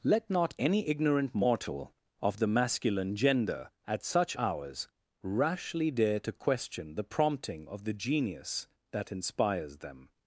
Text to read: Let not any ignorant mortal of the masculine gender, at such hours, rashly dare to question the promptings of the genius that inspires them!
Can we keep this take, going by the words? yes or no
no